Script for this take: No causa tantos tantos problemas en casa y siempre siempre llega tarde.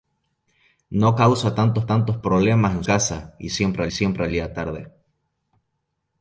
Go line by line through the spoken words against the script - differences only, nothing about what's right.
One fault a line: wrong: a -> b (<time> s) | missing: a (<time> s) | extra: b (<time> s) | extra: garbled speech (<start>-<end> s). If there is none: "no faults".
no faults